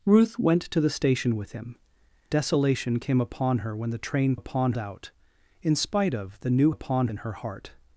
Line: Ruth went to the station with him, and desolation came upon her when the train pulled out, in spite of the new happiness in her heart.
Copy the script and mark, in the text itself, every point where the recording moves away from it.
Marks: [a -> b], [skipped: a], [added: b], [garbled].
Ruth went to the station with him, [skipped: and] desolation came upon her when the train [pulled -> upon] out, in spite of the new [happiness -> upon] in her heart.